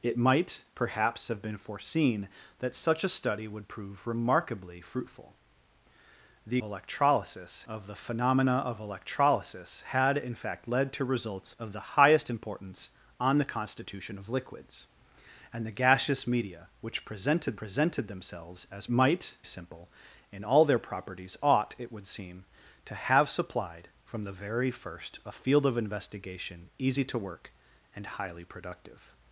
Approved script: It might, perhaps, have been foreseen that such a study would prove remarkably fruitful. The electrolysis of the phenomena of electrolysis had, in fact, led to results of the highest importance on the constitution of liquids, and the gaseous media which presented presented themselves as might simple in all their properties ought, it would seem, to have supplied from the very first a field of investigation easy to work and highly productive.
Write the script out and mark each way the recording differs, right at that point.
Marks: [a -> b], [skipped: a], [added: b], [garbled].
It might, perhaps, have been foreseen that such a study would prove remarkably fruitful. The electrolysis of the phenomena of electrolysis had, in fact, led to results of the highest importance on the constitution of liquids, and the gaseous media which presented presented themselves as might simple in all their properties ought, it would seem, to have supplied from the very first a field of investigation easy to work and highly productive.